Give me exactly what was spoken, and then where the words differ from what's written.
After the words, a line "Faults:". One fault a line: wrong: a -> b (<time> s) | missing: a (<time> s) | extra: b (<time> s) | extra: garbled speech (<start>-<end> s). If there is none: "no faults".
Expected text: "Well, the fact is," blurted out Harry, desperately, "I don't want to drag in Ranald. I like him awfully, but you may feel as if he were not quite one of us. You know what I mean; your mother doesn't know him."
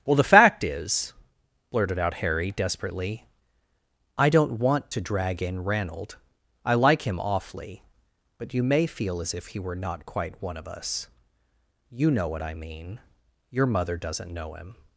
"Well, the fact is," blurted out Harry, desperately, "I don't want to drag in Ranald. I like him awfully, but you may feel as if he were not quite one of us. You know what I mean; your mother doesn't know him."
Faults:
no faults